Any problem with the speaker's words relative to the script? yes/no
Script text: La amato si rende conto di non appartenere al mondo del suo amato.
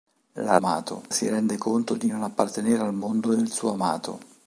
no